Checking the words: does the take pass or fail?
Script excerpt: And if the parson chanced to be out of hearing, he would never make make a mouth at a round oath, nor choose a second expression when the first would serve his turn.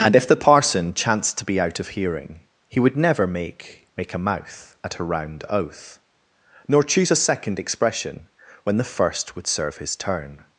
pass